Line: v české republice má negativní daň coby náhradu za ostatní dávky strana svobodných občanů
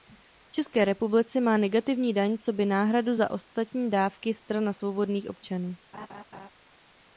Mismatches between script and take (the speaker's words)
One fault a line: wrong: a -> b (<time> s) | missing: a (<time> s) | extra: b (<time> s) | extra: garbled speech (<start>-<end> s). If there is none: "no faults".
no faults